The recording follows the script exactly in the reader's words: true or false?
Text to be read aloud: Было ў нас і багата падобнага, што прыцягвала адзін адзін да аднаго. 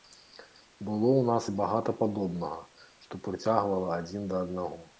false